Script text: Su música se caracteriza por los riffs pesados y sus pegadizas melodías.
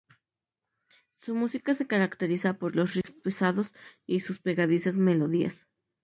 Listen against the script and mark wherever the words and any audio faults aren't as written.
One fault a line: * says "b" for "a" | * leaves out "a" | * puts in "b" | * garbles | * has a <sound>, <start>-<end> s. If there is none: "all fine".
* has a dropout, 3.0-3.0 s